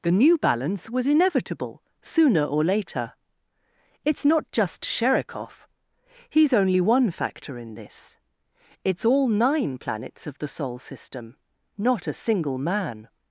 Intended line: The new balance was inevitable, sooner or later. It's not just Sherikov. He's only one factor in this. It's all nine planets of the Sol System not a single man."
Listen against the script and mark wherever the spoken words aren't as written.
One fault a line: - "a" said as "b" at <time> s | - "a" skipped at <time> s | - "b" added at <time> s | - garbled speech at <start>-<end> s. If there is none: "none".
none